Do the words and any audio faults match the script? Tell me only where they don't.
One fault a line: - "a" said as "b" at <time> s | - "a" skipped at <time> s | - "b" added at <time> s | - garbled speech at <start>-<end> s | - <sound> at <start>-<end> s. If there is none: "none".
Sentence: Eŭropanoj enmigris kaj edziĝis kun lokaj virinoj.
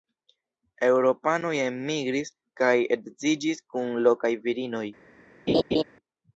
- laugh at 5.5-5.8 s